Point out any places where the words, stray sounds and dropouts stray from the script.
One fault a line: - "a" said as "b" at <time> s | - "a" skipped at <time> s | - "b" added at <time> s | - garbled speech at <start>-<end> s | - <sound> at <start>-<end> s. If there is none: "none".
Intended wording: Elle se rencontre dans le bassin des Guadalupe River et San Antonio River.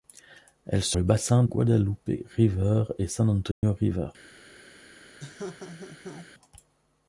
- "rencontre dans" skipped at 1.0 s
- "des" skipped at 1.4 s
- dropout at 3.5-3.6 s
- laugh at 5.2-6.3 s